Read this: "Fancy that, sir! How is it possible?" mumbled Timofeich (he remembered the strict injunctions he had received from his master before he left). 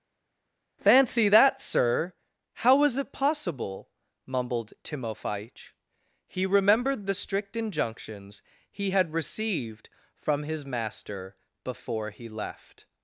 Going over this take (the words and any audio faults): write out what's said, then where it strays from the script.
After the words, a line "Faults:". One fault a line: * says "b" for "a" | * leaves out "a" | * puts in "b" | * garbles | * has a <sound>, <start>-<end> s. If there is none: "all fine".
"Fancy that, sir! How was it possible?" mumbled Timofeich (he remembered the strict injunctions he had received from his master before he left).
Faults:
* says "was" for "is"